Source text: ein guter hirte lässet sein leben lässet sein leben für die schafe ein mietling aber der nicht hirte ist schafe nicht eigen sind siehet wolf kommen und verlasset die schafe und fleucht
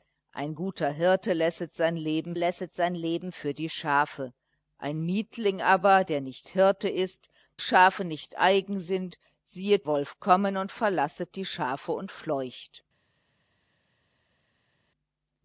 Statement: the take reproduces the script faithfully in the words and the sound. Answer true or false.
true